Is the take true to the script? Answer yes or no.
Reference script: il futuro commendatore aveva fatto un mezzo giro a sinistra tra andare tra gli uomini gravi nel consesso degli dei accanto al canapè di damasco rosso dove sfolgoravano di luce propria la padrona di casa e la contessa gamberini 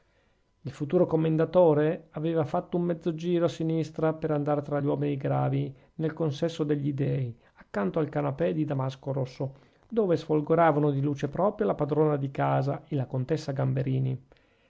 no